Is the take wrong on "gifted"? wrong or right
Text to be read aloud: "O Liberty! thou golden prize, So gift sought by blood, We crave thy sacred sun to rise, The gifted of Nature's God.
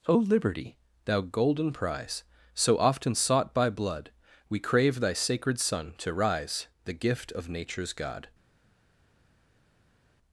wrong